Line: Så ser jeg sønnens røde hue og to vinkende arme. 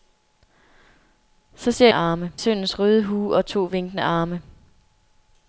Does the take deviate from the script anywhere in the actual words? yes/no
yes